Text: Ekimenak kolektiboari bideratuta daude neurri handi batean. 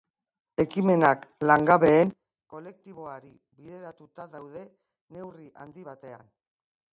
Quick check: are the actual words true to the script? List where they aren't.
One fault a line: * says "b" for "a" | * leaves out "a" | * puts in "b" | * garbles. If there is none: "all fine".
* puts in "langabeen"